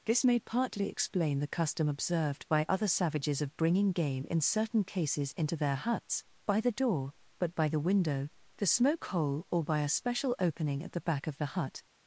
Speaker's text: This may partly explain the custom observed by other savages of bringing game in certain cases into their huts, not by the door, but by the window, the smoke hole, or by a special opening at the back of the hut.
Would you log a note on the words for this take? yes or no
yes